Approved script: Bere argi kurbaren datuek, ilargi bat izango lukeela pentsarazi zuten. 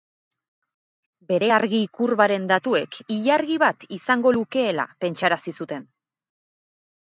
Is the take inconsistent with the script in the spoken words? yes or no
no